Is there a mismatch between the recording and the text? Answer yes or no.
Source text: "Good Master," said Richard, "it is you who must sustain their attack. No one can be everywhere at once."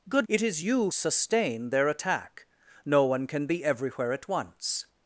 yes